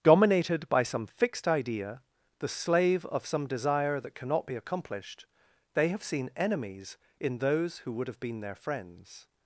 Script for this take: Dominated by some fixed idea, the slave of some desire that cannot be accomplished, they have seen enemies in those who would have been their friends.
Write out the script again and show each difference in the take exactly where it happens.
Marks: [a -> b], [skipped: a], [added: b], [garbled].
Dominated by some fixed idea, the slave of some desire that cannot be accomplished, they have seen enemies in those who would have been their friends.